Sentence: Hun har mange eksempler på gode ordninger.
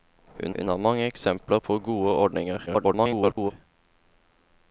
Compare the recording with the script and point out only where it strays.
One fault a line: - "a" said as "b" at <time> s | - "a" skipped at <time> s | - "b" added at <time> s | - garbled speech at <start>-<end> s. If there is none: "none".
- "hun" added at 0.5 s
- garbled speech at 2.7-3.5 s